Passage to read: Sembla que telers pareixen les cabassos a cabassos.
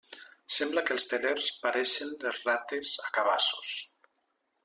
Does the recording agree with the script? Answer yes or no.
no